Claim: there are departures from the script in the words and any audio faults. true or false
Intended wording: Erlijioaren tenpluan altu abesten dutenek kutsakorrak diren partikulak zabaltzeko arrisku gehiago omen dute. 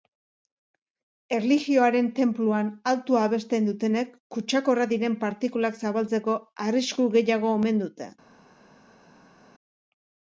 false